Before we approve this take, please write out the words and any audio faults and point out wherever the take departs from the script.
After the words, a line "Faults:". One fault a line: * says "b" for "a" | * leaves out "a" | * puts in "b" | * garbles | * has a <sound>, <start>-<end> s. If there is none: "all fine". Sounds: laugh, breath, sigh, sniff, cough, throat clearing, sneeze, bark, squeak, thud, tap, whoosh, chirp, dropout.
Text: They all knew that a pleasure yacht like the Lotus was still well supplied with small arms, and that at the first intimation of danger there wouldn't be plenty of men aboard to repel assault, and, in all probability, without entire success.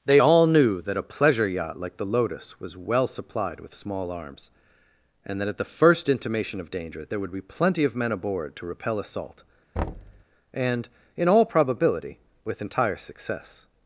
They all knew that a pleasure yacht like the Lotus was well supplied with small arms, and that at the first intimation of danger there would be plenty of men aboard to repel assault, and, in all probability, with entire success.
Faults:
* leaves out "still"
* says "would" for "wouldn't"
* has a thud, 9.8-10.2 s
* says "with" for "without"